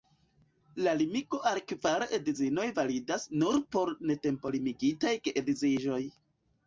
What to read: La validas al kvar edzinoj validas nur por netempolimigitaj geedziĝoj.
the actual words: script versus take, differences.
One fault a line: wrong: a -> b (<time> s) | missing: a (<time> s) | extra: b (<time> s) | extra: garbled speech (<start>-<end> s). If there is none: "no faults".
wrong: validas -> limigo (1.0 s)